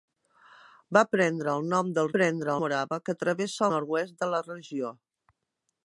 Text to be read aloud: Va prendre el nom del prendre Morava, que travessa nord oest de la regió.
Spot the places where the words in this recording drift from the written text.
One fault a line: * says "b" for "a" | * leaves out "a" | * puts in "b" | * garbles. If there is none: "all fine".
all fine